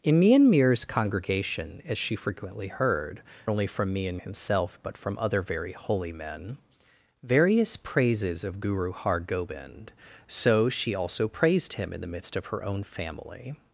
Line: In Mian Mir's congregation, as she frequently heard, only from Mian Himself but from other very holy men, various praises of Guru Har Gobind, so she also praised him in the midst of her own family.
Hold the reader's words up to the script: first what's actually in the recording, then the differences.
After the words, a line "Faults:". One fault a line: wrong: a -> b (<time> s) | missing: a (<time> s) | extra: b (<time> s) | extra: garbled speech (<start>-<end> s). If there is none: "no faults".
In Mian Mir's congregation, as she frequently heard, only from Mian Himself but from other very holy men, various praises of Guru Har Gobind, so she also praised him in the midst of her own family.
Faults:
no faults